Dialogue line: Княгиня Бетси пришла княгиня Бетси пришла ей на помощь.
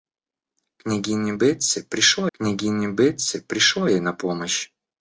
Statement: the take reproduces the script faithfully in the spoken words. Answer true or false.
true